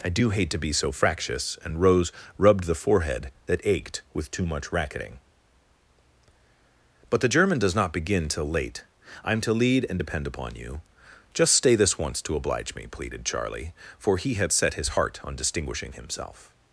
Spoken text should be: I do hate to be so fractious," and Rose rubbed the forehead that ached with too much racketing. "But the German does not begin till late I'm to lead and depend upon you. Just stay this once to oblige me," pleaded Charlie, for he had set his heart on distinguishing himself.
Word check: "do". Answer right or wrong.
right